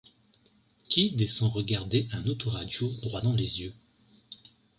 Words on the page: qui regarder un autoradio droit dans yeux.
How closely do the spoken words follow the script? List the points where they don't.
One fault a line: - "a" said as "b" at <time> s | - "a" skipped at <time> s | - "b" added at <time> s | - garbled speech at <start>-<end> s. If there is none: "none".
- "descend" added at 1.1 s
- "les" added at 3.3 s